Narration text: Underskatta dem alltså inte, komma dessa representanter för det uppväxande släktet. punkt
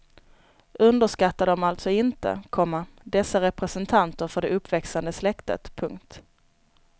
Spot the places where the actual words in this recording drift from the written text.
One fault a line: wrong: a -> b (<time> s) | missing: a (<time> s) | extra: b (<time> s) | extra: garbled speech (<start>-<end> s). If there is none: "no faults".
no faults